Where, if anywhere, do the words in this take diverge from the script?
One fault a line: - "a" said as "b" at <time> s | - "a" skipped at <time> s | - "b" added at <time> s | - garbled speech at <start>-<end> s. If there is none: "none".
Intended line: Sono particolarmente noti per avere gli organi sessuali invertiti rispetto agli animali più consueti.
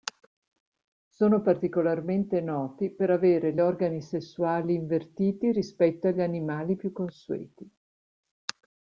none